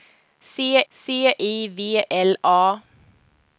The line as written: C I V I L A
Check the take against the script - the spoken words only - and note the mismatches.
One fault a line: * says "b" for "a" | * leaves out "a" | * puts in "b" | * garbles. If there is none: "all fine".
* puts in "c"
* leaves out "I"